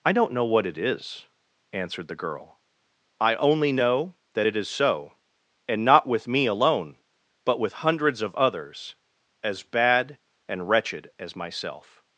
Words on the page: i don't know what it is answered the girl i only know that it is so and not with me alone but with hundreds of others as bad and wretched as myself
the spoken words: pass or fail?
pass